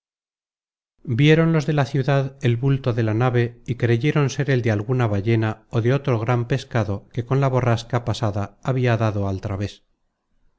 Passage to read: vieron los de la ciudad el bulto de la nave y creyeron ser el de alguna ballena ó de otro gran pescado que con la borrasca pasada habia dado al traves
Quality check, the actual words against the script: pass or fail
pass